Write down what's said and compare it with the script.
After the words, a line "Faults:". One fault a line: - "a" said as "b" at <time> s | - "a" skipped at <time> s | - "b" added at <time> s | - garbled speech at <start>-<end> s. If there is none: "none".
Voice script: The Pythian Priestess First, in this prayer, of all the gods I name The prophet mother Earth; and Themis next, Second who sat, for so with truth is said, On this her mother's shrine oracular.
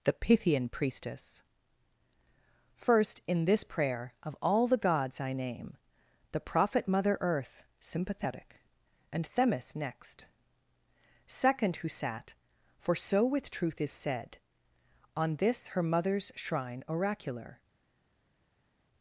The Pythian Priestess First, in this prayer, of all the gods I name The prophet mother Earth; sympathetic and Themis next, Second who sat, for so with truth is said, On this her mother's shrine oracular.
Faults:
- "sympathetic" added at 7.8 s